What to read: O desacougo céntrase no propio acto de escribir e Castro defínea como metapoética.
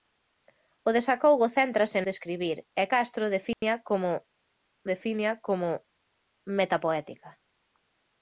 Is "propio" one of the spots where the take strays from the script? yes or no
yes